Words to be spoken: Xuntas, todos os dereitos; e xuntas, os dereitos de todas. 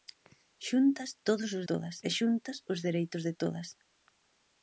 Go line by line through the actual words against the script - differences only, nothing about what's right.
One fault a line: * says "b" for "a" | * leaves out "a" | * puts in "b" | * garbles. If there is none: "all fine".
* says "todas" for "dereitos"